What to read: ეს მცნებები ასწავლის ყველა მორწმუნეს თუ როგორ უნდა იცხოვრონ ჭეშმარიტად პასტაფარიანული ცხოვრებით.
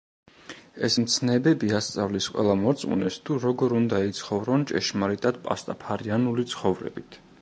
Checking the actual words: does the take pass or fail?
pass